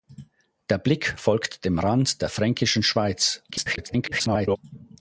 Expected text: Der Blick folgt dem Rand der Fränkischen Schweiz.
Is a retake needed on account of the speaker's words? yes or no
yes